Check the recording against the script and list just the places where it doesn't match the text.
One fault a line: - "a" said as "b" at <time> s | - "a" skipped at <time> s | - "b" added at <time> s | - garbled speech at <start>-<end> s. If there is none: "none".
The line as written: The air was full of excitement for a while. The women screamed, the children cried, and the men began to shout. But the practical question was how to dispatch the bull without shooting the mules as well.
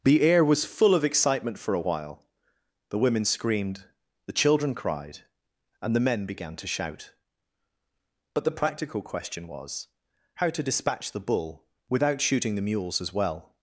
none